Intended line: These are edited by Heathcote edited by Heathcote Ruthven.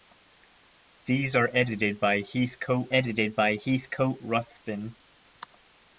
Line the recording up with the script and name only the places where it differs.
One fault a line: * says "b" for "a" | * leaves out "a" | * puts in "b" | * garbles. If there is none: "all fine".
all fine